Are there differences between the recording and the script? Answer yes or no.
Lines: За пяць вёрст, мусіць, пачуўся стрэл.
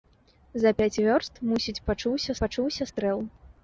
yes